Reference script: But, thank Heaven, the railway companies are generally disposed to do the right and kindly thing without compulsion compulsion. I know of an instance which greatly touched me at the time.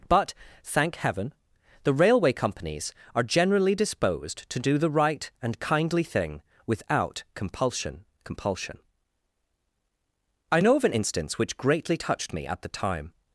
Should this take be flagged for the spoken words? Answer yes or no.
no